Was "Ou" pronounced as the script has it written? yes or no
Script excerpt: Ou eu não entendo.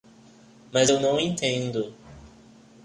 no